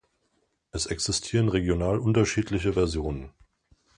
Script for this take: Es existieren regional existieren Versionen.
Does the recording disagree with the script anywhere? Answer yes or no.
yes